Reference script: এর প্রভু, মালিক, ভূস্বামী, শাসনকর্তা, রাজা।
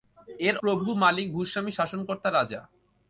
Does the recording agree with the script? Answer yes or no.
yes